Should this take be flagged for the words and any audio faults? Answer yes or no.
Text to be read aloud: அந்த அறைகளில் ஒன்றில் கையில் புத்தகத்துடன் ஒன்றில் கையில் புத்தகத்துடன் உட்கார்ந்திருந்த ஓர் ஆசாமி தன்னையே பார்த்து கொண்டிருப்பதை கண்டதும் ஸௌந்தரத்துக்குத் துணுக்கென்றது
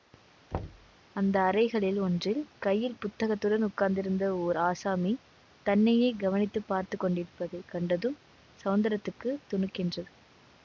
yes